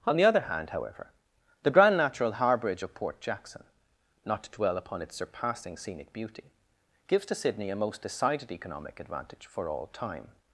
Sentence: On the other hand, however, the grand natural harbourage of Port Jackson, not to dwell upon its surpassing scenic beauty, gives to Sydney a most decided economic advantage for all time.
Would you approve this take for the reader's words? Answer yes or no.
yes